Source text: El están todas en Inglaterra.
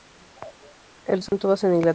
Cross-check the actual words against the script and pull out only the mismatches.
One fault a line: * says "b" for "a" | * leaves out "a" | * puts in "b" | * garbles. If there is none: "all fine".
all fine